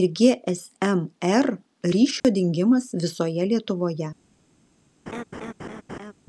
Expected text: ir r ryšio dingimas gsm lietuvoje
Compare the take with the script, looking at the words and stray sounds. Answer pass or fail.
fail